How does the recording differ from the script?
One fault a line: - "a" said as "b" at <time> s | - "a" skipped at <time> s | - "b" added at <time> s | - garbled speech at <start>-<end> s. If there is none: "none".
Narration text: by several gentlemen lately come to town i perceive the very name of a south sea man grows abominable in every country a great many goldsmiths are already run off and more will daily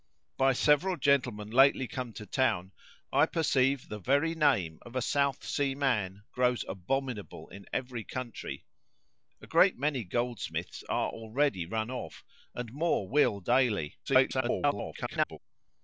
- garbled speech at 14.1-15.4 s